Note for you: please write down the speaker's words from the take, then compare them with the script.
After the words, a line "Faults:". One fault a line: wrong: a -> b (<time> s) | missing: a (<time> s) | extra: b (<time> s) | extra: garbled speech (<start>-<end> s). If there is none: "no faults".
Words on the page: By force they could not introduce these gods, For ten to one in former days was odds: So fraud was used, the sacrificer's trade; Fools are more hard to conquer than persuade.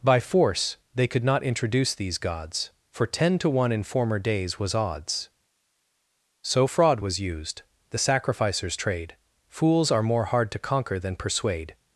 By force they could not introduce these gods, For ten to one in former days was odds: So fraud was used, the sacrificer's trade; Fools are more hard to conquer than persuade.
Faults:
no faults